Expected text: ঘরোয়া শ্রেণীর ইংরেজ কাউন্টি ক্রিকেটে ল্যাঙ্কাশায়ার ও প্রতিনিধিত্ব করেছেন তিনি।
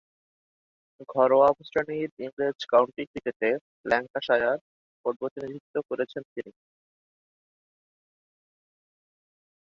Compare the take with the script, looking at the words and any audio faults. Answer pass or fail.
pass